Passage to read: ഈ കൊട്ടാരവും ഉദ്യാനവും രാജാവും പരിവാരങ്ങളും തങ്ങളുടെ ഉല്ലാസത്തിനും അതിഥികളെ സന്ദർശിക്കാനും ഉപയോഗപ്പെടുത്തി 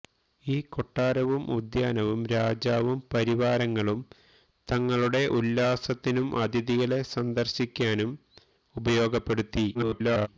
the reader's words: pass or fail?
fail